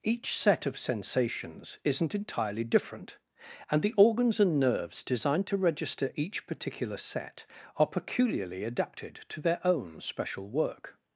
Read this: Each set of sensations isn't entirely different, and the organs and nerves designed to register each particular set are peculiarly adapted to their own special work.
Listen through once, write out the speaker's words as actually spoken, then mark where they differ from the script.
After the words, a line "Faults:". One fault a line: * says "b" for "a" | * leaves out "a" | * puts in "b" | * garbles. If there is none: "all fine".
Each set of sensations isn't entirely different, and the organs and nerves designed to register each particular set are peculiarly adapted to their own special work.
Faults:
all fine